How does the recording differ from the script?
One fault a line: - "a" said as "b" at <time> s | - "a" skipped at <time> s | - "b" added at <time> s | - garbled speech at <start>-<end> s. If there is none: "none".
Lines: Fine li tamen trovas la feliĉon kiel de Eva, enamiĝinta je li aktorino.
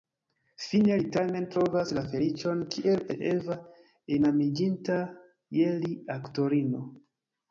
none